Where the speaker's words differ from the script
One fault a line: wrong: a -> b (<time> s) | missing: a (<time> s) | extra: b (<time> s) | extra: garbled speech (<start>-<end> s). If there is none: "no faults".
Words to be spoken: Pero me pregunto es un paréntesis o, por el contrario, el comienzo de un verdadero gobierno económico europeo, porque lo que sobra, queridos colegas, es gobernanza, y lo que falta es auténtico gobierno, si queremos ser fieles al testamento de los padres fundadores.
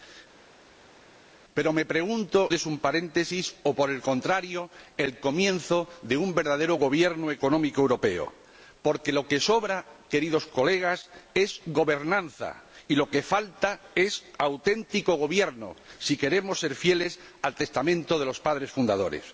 no faults